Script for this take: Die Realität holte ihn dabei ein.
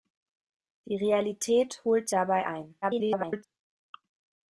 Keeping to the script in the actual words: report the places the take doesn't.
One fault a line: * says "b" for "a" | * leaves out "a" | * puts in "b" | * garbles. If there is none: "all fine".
* leaves out "ihn"
* garbles